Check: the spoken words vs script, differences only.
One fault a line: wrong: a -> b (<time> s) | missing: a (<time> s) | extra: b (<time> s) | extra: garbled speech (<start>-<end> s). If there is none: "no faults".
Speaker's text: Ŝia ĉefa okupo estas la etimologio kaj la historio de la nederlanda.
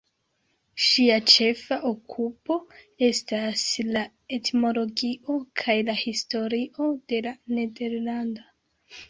no faults